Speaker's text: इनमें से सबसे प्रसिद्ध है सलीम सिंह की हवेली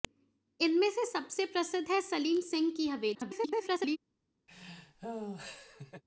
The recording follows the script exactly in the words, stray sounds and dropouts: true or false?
false